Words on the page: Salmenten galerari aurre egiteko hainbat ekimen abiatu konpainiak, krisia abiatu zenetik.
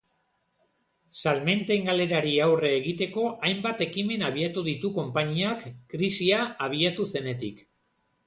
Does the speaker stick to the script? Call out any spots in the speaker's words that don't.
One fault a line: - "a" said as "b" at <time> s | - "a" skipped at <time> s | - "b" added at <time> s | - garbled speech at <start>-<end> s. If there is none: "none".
- "ditu" added at 4.7 s